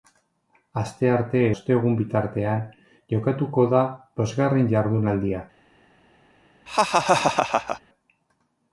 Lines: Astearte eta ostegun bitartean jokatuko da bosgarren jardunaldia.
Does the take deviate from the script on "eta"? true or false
true